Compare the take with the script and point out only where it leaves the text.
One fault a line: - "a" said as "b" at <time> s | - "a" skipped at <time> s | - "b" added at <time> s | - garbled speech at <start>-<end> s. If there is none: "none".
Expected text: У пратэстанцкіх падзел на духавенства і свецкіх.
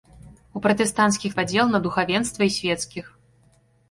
none